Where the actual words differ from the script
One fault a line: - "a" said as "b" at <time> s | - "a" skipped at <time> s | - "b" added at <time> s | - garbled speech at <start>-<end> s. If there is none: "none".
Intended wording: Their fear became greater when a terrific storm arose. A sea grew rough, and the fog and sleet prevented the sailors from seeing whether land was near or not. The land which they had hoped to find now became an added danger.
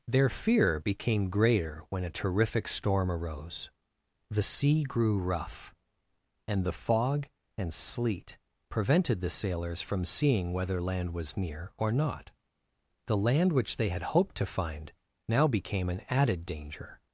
- "A" said as "The" at 4.3 s